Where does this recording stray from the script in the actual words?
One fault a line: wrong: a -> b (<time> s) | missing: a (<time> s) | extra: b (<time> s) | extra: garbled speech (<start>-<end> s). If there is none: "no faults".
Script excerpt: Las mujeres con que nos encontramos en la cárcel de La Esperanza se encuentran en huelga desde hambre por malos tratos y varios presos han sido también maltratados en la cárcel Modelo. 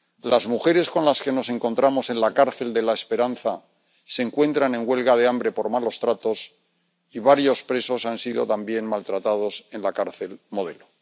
extra: las (1.1 s)
wrong: desde -> de (5.2 s)